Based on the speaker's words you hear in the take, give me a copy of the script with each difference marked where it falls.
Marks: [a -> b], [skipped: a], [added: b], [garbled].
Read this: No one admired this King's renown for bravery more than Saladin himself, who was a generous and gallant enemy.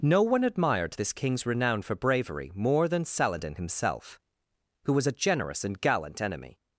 No one admired this King's renown for bravery more than Saladin himself, who was a generous and gallant enemy.